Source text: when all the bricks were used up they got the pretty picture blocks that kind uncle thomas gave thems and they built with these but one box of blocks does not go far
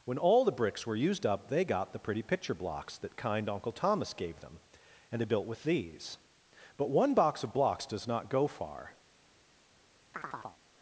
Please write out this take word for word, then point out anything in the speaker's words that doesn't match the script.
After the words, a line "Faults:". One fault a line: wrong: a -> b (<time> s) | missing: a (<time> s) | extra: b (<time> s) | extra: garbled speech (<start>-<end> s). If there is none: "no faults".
when all the bricks were used up they got the pretty picture blocks that kind uncle thomas gave them and they built with these but one box of blocks does not go far
Faults:
wrong: thems -> them (4.4 s)